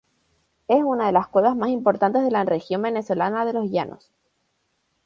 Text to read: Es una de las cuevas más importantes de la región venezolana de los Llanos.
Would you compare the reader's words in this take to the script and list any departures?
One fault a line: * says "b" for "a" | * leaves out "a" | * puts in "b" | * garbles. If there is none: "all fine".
all fine